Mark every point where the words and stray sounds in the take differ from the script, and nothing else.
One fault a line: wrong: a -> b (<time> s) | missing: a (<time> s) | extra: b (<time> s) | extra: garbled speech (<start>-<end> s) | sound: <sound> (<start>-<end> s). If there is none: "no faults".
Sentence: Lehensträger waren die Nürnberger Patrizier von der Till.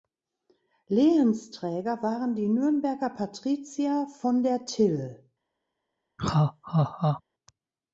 sound: laugh (6.2-7.2 s)